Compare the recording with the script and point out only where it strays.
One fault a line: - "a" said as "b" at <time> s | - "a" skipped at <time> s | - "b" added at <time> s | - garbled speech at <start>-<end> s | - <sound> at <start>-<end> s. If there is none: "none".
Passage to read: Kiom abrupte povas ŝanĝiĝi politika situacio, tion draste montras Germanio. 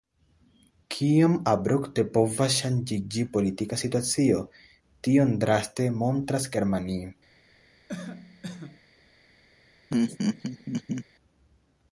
- cough at 7.9-8.8 s
- laugh at 9.9-11.1 s